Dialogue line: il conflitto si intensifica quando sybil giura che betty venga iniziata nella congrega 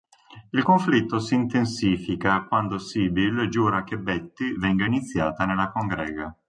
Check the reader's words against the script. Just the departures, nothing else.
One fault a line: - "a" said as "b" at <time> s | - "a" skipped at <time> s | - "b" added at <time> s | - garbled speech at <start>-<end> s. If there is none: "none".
none